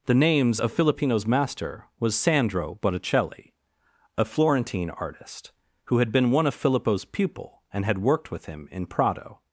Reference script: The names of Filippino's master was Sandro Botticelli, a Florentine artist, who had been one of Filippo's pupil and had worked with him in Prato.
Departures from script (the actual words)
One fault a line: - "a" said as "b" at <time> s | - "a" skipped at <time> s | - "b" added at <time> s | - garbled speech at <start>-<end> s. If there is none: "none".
none